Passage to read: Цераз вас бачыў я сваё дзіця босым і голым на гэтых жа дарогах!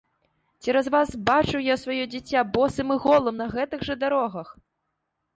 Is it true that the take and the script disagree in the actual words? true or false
false